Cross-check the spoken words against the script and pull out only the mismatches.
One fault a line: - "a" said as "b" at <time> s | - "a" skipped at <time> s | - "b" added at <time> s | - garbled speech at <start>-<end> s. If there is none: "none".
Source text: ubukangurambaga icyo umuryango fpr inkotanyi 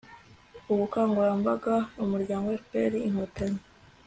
- "icyo" skipped at 1.8 s